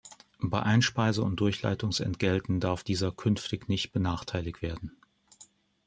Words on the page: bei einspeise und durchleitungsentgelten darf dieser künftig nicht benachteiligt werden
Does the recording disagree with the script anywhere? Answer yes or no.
no